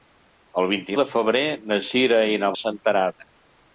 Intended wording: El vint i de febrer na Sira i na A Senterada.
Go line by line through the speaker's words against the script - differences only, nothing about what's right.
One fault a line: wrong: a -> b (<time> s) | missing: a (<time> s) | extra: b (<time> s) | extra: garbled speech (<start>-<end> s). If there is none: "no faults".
no faults